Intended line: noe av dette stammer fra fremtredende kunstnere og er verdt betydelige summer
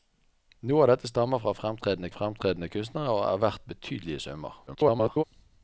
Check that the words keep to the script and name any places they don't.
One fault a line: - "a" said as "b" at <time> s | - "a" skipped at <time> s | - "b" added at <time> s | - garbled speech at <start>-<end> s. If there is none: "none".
- "fremtredende" added at 2.1 s
- garbled speech at 4.7-5.2 s